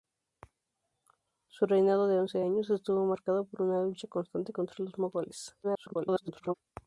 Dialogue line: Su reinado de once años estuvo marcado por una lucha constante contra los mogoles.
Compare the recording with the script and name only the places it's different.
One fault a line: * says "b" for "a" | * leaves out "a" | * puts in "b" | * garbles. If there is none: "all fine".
* garbles